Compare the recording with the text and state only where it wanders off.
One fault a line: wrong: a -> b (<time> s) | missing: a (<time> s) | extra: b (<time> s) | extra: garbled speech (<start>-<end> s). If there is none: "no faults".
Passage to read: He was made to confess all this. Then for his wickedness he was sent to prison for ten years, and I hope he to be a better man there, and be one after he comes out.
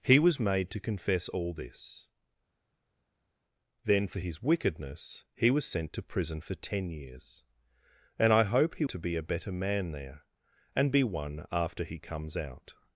no faults